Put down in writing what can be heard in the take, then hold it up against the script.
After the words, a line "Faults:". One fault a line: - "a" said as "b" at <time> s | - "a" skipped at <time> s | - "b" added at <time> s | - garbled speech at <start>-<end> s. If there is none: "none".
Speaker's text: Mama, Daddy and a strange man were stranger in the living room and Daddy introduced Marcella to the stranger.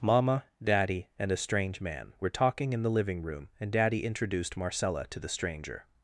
Mama, Daddy and a strange man were talking in the living room and Daddy introduced Marcella to the stranger.
Faults:
- "stranger" said as "talking" at 2.3 s